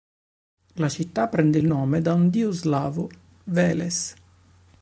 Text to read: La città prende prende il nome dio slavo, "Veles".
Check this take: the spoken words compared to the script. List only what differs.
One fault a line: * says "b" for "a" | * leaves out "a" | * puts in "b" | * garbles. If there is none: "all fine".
* leaves out "prende"
* puts in "da un"